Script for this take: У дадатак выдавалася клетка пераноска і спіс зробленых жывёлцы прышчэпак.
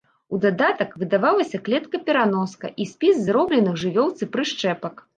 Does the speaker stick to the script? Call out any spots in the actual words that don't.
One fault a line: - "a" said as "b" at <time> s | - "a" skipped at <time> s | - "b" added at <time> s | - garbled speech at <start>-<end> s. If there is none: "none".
none